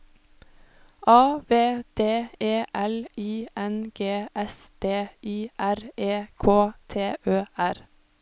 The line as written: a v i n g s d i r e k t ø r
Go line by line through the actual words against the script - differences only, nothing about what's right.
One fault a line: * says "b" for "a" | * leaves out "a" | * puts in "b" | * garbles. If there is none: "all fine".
* puts in "d e l"